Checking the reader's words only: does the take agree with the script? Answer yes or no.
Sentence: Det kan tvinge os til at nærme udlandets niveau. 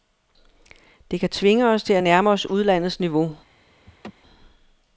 no